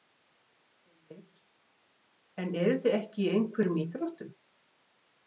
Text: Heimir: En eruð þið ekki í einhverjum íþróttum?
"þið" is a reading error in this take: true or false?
false